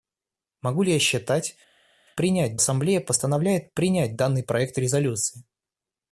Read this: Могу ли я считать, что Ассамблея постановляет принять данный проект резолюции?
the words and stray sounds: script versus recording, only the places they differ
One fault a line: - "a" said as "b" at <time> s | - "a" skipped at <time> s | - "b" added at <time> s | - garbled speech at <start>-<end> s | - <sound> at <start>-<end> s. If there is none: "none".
- "что" said as "принять" at 2.1 s